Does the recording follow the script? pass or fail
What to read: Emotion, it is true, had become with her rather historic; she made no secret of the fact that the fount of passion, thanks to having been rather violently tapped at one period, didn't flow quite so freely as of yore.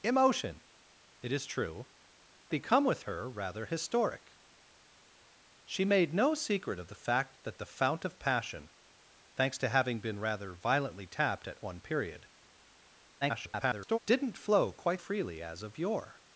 fail